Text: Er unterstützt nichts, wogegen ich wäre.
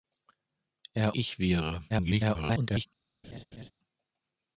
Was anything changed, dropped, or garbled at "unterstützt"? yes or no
yes